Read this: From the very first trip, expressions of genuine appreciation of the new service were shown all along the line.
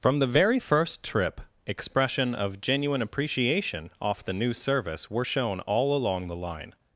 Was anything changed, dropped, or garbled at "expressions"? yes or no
yes